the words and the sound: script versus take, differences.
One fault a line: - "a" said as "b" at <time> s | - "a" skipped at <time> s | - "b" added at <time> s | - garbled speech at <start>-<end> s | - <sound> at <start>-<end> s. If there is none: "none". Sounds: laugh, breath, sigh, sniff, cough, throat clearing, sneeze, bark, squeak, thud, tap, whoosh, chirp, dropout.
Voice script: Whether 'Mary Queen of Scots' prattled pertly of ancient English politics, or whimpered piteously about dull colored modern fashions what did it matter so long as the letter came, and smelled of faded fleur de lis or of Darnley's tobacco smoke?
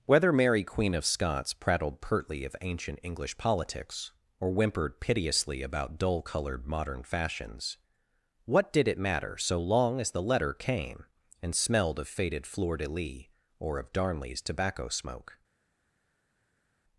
none